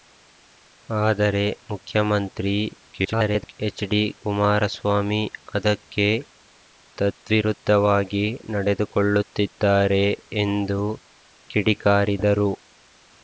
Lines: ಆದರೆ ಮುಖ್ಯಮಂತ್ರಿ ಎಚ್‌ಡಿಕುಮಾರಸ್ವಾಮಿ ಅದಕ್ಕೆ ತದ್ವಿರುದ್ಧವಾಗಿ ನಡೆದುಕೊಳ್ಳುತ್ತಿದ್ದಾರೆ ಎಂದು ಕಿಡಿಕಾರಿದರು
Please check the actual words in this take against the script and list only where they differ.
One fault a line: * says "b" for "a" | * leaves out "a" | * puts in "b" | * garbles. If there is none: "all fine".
* garbles